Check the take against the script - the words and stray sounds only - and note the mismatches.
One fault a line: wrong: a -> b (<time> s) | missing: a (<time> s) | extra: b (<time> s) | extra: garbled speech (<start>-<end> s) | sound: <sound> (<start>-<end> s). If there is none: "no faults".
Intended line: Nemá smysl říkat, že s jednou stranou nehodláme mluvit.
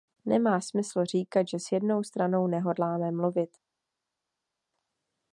no faults